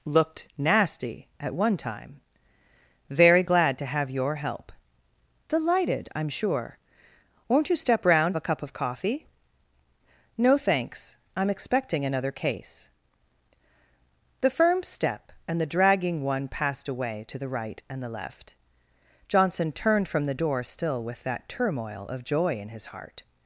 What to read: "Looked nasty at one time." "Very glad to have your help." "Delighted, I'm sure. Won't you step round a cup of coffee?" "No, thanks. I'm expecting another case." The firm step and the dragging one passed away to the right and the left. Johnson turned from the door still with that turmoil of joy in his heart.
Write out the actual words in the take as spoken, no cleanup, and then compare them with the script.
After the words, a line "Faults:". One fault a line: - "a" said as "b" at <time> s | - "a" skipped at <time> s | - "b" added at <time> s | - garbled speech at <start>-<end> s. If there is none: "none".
"Looked nasty at one time." "Very glad to have your help." "Delighted, I'm sure. Won't you step round a cup of coffee?" "No, thanks. I'm expecting another case." The firm step and the dragging one passed away to the right and the left. Johnson turned from the door still with that turmoil of joy in his heart.
Faults:
none